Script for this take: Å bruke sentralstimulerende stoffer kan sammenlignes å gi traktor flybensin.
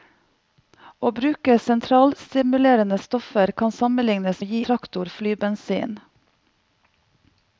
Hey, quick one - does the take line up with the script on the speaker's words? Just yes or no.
yes